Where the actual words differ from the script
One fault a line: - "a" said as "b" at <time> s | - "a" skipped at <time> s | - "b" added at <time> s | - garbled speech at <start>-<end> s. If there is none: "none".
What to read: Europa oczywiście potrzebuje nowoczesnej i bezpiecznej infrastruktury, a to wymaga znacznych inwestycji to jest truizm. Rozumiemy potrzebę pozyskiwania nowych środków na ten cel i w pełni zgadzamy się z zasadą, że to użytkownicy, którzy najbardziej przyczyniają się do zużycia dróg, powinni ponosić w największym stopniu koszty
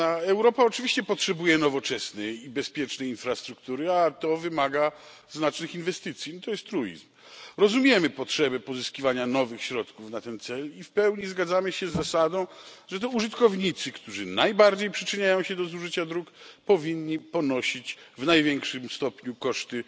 none